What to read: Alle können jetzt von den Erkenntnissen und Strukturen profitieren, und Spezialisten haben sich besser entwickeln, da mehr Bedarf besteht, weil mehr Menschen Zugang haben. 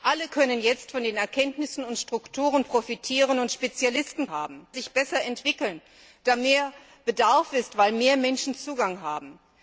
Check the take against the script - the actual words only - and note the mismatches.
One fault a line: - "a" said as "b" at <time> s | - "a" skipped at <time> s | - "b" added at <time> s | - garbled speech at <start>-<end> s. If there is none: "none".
none